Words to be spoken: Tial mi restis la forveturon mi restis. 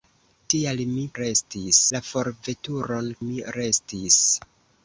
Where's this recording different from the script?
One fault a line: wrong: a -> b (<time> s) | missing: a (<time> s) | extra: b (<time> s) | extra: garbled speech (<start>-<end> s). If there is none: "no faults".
no faults